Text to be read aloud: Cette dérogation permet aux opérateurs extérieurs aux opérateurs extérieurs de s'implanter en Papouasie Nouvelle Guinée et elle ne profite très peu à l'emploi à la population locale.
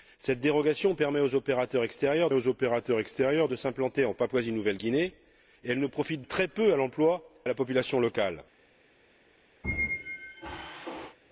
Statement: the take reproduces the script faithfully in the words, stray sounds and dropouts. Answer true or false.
false